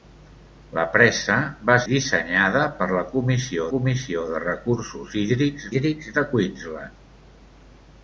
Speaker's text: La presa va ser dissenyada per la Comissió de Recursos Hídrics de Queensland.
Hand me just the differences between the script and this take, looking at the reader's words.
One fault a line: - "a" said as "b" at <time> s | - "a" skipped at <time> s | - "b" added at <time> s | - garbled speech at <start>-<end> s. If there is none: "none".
- "ser" skipped at 1.8 s
- "Comissió" added at 3.7 s
- "Hídrics" added at 5.7 s